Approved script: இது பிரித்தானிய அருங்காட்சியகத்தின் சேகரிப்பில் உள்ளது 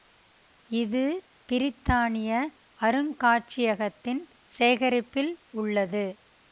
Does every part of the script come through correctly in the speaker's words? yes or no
yes